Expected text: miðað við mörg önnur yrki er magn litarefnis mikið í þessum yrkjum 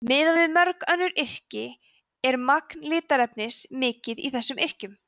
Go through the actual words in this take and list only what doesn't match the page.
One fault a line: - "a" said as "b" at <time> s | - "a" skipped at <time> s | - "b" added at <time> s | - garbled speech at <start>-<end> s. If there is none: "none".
none